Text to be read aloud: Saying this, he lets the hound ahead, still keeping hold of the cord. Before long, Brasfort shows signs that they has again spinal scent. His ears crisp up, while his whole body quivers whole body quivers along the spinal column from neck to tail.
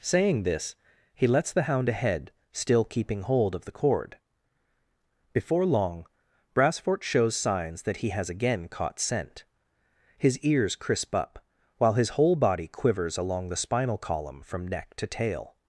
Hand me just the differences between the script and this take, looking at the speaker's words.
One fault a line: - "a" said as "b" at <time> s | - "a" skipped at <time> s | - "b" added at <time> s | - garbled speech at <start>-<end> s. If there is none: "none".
- "they" said as "he" at 8.0 s
- "spinal" said as "caught" at 8.7 s
- "whole body quivers" skipped at 13.2 s